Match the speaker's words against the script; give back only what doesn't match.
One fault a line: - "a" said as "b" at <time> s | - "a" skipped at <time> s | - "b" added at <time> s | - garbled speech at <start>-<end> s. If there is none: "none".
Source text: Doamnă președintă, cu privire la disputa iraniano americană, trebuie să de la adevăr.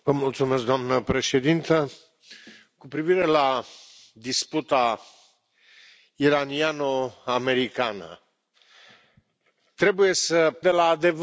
none